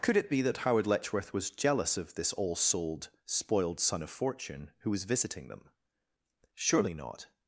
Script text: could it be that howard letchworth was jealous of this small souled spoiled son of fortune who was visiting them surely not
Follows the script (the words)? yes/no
no